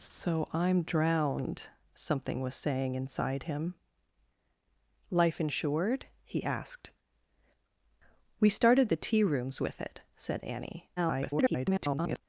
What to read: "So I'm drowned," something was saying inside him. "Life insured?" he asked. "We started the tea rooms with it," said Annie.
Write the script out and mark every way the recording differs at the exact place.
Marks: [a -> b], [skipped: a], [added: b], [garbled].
"So I'm drowned," something was saying inside him. "Life insured?" he asked. "We started the tea rooms with it," said Annie. [garbled]